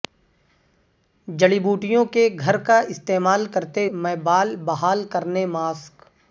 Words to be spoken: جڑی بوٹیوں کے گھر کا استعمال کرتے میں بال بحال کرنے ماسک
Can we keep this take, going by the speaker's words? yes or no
yes